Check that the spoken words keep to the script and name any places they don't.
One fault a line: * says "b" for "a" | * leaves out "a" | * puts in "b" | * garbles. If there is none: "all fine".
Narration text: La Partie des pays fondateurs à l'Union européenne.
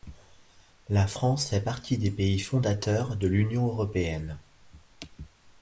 * puts in "France fait"
* says "de" for "à"